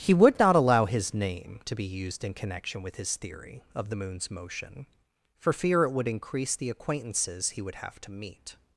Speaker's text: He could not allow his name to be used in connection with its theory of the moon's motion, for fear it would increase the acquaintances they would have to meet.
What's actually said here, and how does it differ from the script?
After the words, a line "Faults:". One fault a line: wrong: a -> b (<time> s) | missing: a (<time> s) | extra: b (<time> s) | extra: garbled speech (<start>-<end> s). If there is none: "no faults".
He would not allow his name to be used in connection with his theory of the moon's motion, for fear it would increase the acquaintances he would have to meet.
Faults:
wrong: could -> would (0.1 s)
wrong: its -> his (3.0 s)
wrong: they -> he (7.5 s)